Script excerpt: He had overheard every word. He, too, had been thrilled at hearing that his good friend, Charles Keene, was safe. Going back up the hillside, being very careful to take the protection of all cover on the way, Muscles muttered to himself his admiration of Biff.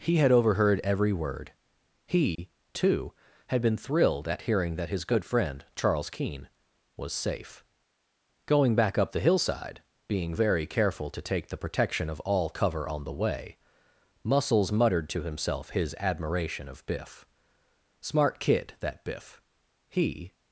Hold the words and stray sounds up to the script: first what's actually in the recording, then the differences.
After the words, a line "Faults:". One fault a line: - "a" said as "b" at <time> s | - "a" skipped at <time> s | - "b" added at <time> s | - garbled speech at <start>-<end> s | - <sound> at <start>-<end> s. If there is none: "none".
He had overheard every word. He, too, had been thrilled at hearing that his good friend, Charles Keene, was safe. Going back up the hillside, being very careful to take the protection of all cover on the way, Muscles muttered to himself his admiration of Biff. "Smart kid, that Biff," he
Faults:
- dropout at 2.4-2.4 s
- "Smart kid that Biff he" added at 18.0 s